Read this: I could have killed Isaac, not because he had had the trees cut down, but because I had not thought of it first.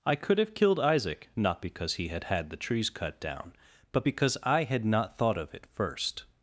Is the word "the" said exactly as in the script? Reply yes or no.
yes